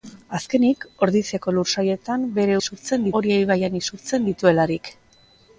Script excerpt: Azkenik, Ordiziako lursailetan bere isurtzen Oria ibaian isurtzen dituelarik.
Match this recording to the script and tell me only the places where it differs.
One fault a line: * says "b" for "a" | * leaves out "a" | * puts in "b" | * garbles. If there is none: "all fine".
all fine